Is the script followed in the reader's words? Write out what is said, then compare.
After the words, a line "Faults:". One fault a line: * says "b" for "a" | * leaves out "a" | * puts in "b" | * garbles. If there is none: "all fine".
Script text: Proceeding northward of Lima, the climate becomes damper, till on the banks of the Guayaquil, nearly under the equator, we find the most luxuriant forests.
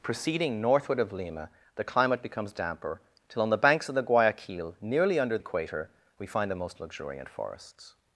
Proceeding northward of Lima, the climate becomes damper, till on the banks of the Guayaquil, nearly under equator, we find the most luxuriant forests.
Faults:
* leaves out "the"